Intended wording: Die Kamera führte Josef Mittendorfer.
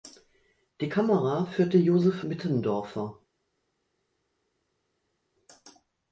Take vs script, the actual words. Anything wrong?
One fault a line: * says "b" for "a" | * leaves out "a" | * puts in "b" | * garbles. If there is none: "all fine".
all fine